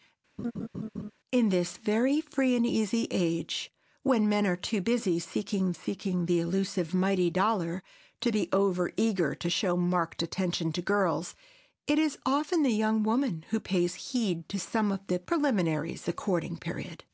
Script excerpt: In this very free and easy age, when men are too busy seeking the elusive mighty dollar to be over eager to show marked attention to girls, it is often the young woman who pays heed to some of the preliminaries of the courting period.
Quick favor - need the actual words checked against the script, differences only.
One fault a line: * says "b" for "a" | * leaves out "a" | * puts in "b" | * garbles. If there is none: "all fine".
* puts in "seeking"
* leaves out "of"